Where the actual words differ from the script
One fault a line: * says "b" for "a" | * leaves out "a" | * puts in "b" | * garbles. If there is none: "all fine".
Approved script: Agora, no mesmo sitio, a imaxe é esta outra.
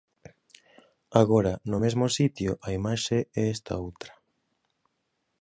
all fine